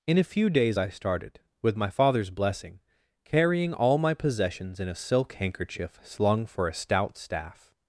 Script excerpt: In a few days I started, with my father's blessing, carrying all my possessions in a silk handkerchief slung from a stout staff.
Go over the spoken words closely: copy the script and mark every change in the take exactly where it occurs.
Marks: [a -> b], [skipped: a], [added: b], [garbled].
In a few days I started, with my father's blessing, carrying all my possessions in a silk handkerchief slung [from -> for] a stout staff.